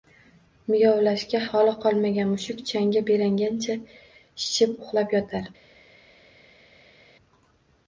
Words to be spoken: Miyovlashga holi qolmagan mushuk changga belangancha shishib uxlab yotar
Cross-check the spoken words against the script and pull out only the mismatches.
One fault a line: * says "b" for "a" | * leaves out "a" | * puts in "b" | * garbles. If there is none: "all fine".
all fine